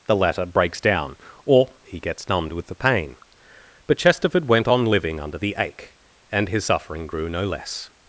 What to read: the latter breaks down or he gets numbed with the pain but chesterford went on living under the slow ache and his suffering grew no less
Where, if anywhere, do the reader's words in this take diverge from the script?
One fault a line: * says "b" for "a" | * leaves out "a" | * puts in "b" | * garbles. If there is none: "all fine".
* leaves out "slow"